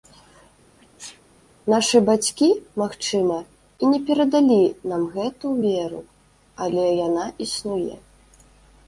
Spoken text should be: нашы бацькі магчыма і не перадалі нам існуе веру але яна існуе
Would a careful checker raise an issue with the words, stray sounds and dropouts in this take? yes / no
yes